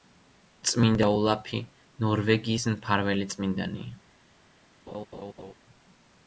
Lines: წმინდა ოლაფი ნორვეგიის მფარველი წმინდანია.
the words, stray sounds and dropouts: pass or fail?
fail